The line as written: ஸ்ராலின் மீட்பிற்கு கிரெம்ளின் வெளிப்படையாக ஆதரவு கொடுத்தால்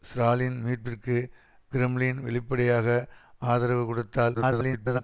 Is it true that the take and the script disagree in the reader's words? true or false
true